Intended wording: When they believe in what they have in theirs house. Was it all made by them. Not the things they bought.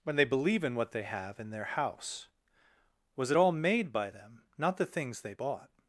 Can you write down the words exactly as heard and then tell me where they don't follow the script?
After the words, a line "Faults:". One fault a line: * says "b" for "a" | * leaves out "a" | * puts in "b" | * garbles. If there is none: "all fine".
When they believe in what they have in their house. Was it all made by them. Not the things they bought.
Faults:
* says "their" for "theirs"